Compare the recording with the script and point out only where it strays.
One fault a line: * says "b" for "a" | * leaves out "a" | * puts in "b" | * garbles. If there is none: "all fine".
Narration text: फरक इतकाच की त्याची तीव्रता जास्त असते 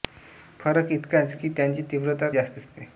all fine